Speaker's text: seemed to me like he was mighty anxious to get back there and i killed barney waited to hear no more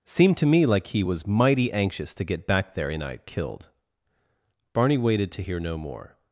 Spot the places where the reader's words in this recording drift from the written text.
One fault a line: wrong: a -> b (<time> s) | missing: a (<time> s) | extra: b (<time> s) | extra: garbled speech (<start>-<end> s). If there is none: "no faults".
no faults